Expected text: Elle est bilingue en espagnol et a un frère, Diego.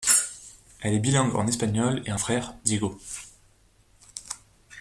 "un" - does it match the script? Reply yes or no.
no